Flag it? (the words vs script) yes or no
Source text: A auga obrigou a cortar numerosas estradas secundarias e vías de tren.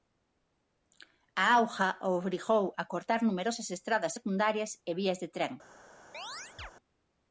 no